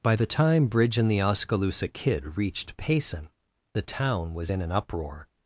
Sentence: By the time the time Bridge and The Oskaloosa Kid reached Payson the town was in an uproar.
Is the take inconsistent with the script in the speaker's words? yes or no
yes